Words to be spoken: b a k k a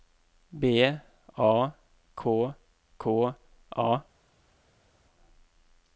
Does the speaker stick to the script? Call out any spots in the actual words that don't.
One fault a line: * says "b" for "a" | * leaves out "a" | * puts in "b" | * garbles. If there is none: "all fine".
all fine